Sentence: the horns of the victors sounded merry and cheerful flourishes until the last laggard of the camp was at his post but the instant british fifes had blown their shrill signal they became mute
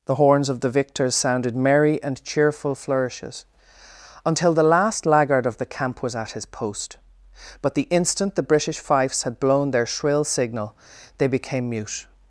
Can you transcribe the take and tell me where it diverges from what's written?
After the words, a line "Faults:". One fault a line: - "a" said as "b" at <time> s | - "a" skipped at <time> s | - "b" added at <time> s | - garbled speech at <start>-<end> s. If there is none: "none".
the horns of the victors sounded merry and cheerful flourishes until the last laggard of the camp was at his post but the instant the british fifes had blown their shrill signal they became mute
Faults:
- "the" added at 8.3 s